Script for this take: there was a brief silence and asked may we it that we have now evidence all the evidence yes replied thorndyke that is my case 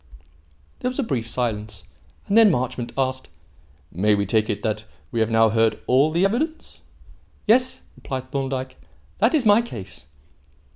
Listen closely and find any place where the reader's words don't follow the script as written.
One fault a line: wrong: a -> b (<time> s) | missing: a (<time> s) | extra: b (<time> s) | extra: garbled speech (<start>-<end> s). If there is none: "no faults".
extra: then marchmont (2.4 s)
extra: take (4.2 s)
wrong: evidence -> heard (5.5 s)